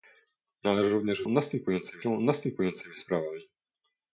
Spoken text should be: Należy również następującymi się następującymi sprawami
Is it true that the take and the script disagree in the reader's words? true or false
false